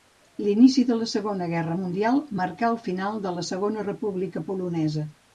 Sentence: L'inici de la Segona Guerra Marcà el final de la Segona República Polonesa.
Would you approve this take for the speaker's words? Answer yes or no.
no